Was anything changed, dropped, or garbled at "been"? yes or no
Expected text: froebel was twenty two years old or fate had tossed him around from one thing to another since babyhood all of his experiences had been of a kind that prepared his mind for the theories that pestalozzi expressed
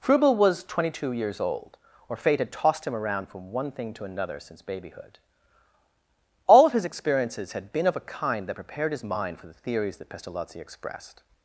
no